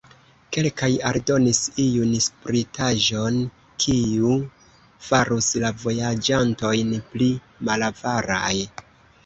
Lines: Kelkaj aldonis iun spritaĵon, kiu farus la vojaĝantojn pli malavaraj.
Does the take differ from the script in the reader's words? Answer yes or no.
no